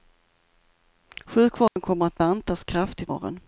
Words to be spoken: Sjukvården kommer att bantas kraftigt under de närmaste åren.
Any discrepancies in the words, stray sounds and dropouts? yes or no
yes